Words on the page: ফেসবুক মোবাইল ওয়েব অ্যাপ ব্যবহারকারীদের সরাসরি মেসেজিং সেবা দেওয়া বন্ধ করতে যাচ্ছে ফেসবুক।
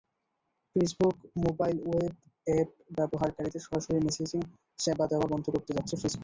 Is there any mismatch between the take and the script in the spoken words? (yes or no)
no